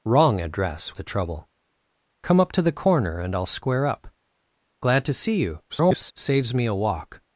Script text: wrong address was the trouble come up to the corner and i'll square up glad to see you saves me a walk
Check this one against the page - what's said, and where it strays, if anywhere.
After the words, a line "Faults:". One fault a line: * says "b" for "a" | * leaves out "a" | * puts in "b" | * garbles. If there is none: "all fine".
wrong address the trouble come up to the corner and i'll square up glad to see you [garbled] saves me a walk
Faults:
* leaves out "was"
* garbles